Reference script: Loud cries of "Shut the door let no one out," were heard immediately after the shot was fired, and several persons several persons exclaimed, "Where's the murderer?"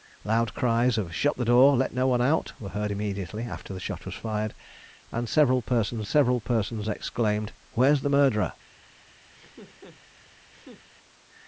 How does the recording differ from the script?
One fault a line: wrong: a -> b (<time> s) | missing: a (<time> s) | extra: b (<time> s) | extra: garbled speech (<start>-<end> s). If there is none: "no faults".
no faults